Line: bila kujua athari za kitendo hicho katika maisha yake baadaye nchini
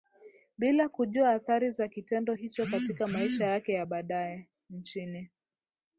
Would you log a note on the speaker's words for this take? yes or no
yes